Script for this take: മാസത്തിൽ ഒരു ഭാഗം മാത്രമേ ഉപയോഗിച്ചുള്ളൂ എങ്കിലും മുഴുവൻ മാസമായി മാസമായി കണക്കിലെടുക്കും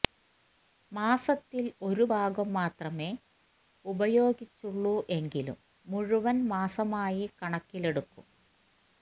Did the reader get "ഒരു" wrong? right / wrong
right